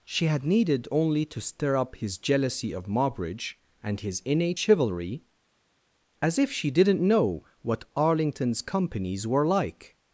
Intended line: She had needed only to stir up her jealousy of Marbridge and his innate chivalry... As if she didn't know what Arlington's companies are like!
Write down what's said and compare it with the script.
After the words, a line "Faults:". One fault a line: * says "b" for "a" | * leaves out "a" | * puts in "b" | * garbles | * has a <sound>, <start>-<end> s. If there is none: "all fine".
She had needed only to stir up his jealousy of Marbridge and his innate chivalry... As if she didn't know what Arlington's companies were like!
Faults:
* says "his" for "her"
* says "were" for "are"